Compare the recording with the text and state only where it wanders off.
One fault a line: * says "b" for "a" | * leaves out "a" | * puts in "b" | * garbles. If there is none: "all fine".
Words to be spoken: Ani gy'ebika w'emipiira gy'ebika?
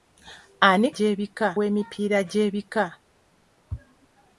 all fine